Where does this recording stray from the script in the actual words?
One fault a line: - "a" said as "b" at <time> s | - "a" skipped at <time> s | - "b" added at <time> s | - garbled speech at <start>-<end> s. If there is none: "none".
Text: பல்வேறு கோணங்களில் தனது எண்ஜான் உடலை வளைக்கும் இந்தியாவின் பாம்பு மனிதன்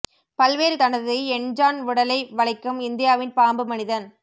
- "கோணங்களில்" skipped at 0.8 s